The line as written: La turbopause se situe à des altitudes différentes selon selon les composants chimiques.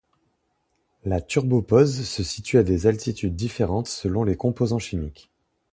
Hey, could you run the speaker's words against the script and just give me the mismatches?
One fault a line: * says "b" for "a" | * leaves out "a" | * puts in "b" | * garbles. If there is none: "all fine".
* leaves out "selon"